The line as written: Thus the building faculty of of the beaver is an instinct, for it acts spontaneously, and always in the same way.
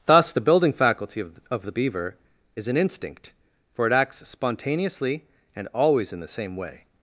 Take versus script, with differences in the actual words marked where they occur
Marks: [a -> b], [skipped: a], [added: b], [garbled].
Thus the building faculty of of the beaver is an instinct, for it acts spontaneously, and always in the same way.